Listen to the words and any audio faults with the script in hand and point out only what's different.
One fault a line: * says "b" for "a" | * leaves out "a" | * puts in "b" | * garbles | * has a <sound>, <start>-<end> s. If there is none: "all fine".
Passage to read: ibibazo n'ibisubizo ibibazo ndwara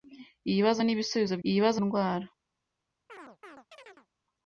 * has a chirp, 3.1-4.1 s